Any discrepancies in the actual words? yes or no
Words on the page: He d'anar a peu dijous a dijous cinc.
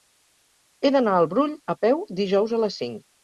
yes